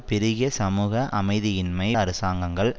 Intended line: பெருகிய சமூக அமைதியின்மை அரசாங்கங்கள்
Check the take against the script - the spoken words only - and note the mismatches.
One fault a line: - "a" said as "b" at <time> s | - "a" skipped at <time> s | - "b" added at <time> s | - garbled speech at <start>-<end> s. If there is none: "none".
none